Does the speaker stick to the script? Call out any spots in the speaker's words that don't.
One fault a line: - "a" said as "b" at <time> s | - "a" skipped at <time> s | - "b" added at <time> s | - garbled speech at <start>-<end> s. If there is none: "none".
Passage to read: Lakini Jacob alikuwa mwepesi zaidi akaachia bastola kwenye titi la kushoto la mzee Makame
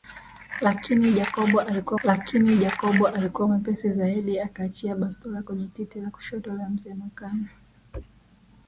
- "lakini Jacob alikuwa" added at 2.0 s